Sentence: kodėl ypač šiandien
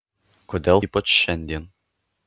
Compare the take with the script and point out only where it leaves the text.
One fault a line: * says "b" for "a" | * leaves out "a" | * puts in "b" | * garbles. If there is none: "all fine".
all fine